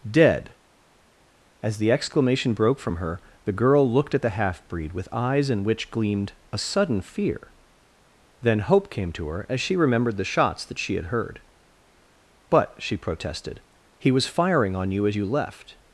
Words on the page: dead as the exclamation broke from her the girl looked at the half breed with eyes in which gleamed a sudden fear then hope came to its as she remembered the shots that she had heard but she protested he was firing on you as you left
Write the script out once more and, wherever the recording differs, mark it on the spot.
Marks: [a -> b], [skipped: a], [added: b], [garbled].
dead as the exclamation broke from her the girl looked at the half breed with eyes in which gleamed a sudden fear then hope came to [its -> her] as she remembered the shots that she had heard but she protested he was firing on you as you left